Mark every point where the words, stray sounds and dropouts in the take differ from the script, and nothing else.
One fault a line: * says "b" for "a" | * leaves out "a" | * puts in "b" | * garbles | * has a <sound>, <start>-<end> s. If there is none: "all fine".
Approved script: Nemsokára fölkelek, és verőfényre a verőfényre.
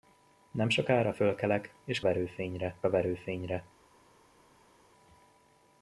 all fine